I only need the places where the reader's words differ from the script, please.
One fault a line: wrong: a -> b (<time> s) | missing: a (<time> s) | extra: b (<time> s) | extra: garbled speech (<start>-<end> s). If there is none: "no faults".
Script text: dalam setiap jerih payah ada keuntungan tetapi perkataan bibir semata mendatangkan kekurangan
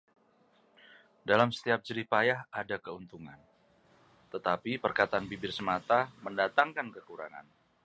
no faults